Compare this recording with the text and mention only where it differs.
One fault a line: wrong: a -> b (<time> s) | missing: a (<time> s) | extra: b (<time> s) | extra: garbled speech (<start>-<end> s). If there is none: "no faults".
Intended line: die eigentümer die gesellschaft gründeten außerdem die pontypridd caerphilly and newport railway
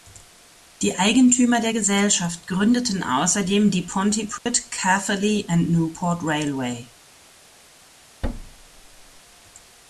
wrong: die -> der (1.6 s)